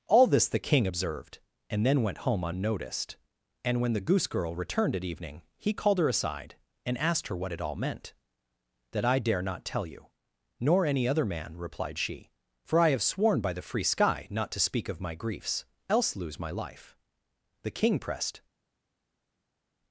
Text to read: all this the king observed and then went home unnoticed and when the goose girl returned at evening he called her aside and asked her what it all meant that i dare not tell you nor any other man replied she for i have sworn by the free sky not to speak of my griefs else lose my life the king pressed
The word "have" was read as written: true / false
true